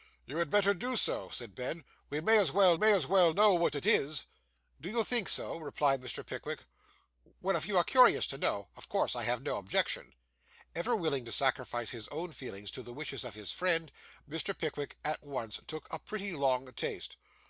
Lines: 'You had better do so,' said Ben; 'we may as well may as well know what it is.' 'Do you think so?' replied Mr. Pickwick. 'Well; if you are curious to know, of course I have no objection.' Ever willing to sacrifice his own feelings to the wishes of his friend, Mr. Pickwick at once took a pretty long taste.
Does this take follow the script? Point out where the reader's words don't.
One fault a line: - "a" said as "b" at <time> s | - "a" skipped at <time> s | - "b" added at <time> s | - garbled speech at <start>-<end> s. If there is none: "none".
none